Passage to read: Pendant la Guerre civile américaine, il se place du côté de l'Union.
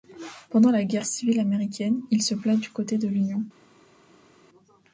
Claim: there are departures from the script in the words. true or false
false